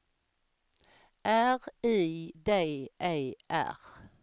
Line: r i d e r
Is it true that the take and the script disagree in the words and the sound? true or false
false